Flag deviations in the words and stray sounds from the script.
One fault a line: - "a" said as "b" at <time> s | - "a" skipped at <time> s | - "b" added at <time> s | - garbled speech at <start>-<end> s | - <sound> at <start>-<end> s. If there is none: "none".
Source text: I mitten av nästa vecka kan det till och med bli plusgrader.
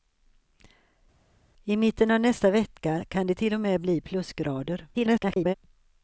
- garbled speech at 4.9-5.5 s